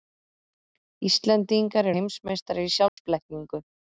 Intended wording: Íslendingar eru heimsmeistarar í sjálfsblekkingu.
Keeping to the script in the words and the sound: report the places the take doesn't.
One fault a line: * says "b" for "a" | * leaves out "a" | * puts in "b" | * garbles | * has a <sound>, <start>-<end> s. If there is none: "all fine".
* leaves out "eru"
* has a dropout, 2.9-3.0 s